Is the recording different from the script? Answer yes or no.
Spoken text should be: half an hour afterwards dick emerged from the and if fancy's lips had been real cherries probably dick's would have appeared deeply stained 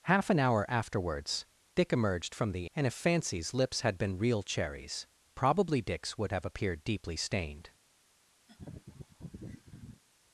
no